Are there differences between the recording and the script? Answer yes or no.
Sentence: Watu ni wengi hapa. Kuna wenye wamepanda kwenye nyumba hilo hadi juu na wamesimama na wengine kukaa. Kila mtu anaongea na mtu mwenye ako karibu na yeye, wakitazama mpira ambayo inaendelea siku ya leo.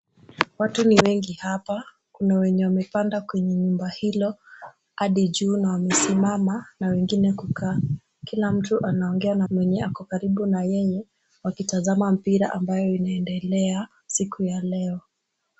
yes